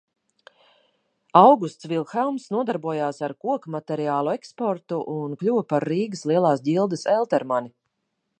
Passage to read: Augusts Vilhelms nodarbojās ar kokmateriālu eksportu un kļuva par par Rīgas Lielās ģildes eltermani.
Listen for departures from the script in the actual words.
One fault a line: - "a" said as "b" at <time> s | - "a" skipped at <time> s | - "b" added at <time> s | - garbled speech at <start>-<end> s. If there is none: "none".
- "par" skipped at 5.9 s